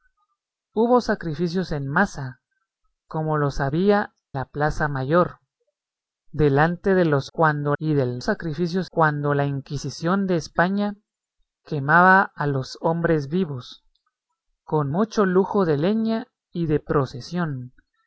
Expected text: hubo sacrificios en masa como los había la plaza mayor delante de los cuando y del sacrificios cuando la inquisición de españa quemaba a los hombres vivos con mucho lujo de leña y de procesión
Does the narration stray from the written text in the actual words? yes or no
no